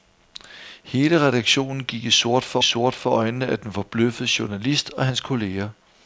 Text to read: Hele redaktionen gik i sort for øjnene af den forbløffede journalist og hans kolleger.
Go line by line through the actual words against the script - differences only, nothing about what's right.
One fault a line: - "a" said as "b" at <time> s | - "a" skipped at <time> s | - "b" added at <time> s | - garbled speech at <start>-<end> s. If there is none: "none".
- "sort for" added at 2.6 s